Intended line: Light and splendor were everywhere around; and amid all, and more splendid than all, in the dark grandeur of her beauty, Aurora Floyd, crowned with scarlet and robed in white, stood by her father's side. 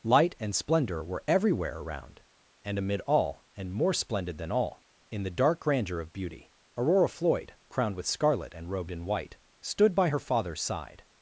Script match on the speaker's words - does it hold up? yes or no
no